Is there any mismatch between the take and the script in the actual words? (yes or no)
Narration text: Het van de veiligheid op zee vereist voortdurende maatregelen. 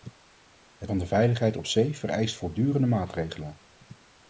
no